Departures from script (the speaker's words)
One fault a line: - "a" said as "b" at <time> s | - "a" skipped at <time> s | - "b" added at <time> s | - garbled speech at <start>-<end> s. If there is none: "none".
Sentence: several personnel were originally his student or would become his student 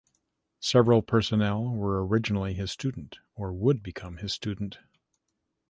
none